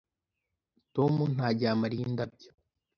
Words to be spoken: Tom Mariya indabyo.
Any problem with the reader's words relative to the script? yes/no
yes